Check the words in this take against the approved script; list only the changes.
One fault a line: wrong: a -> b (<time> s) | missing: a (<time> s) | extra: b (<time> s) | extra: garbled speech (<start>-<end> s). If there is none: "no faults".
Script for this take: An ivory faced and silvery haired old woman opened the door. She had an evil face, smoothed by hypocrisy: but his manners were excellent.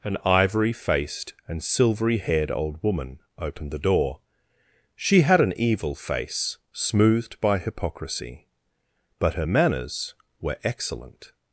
wrong: his -> her (9.3 s)